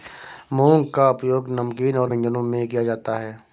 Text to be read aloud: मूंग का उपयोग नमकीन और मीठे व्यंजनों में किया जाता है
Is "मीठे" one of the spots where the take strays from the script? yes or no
yes